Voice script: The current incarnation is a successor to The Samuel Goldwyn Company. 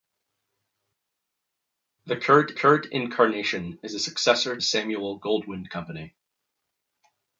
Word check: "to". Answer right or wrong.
wrong